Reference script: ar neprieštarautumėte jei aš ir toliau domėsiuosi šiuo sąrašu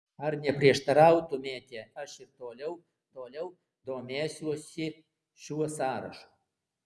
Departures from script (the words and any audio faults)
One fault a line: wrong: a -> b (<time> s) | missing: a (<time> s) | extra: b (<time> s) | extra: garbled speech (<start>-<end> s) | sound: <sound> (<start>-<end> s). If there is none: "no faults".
missing: jei (1.8 s)
extra: toliau (3.2 s)